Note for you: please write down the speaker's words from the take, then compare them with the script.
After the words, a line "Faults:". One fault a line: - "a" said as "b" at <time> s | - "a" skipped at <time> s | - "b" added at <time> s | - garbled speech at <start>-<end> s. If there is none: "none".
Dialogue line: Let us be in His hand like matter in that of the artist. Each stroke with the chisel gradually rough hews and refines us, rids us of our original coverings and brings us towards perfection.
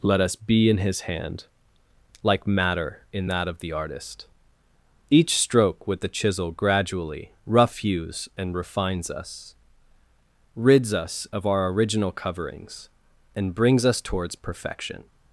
Let us be in His hand like matter in that of the artist. Each stroke with the chisel gradually rough hews and refines us, rids us of our original coverings and brings us towards perfection.
Faults:
none